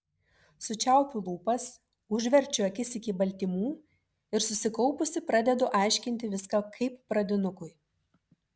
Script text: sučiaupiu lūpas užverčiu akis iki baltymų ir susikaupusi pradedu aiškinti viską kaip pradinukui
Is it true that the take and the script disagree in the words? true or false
false